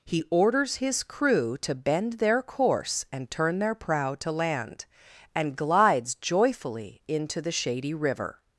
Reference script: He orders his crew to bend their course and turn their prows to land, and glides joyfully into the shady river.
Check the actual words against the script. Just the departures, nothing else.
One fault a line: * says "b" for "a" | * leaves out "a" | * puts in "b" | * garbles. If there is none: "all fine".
* says "prow" for "prows"